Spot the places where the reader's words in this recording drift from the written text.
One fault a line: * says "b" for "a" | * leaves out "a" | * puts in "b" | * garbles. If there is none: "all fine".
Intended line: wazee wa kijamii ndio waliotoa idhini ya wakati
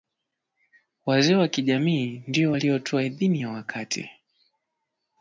all fine